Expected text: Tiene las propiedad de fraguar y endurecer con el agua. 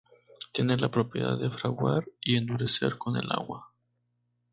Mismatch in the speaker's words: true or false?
true